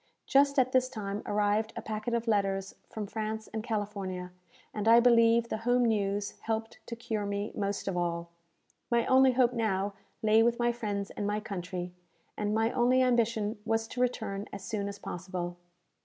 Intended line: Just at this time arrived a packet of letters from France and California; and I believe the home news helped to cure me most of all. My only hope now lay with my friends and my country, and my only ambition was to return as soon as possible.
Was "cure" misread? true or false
false